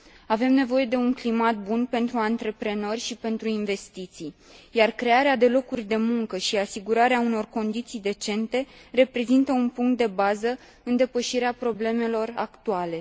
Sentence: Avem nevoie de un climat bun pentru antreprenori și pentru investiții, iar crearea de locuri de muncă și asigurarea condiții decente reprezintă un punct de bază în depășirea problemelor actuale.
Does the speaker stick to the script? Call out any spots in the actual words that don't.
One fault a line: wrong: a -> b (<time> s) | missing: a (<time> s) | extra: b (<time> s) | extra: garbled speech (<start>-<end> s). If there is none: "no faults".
extra: unor (7.2 s)